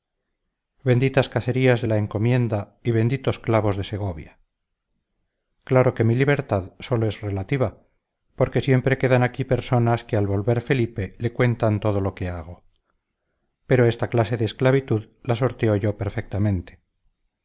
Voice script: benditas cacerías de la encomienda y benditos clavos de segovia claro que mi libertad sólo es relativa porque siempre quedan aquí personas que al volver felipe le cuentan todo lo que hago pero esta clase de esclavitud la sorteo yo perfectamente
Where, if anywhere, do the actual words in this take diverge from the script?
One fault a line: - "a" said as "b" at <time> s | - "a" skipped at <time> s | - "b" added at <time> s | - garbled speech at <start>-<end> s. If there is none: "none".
none